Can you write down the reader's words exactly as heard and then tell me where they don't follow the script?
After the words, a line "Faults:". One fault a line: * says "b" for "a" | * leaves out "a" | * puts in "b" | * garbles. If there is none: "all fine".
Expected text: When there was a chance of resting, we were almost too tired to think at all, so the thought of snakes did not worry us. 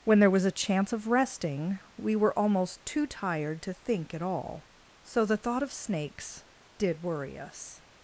When there was a chance of resting, we were almost too tired to think at all, so the thought of snakes did worry us.
Faults:
* leaves out "not"